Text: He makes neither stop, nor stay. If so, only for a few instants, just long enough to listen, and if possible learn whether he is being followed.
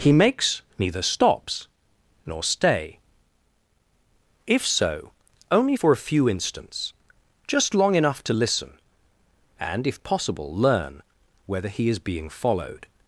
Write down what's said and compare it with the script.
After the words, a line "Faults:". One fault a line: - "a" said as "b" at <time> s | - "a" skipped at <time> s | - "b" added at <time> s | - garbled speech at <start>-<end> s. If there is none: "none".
He makes neither stops, nor stay. If so, only for a few instants, just long enough to listen, and if possible learn whether he is being followed.
Faults:
- "stop" said as "stops" at 1.0 s